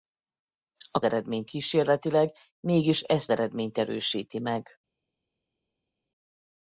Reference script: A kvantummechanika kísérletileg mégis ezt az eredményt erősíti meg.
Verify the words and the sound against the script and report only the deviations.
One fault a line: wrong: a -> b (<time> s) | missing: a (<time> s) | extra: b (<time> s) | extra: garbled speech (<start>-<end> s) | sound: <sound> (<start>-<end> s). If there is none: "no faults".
wrong: kvantummechanika -> eredményt (1.0 s)
missing: az (3.3 s)